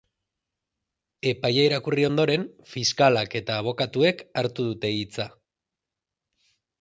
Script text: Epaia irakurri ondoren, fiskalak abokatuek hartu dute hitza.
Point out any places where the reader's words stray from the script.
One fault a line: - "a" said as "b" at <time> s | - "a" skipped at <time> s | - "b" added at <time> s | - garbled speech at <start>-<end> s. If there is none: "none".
- "eta" added at 3.4 s